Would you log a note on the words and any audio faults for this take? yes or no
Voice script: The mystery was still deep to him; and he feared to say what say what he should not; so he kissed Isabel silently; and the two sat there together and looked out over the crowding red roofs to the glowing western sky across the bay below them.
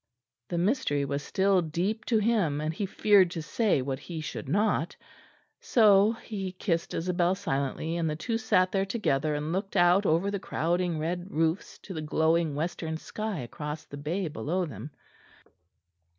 yes